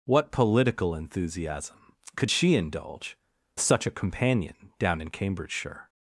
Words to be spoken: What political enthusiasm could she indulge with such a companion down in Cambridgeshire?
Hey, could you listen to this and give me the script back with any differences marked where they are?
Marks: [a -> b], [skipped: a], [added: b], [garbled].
What political enthusiasm could she indulge [skipped: with] such a companion down in Cambridgeshire?